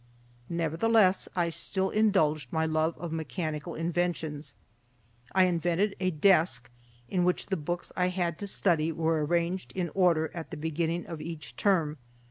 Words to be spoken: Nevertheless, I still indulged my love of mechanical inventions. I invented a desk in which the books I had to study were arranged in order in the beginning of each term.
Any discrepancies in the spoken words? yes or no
yes